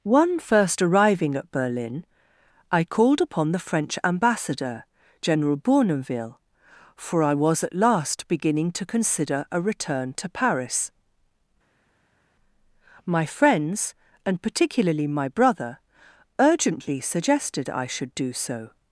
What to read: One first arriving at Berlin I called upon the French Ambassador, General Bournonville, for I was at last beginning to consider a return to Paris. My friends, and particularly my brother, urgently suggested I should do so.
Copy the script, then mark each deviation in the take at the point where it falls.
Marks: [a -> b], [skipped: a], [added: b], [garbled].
One first arriving at Berlin I called upon the French Ambassador, General Bournonville, for I was at last beginning to consider a return to Paris. My friends, and particularly my brother, urgently suggested I should do so.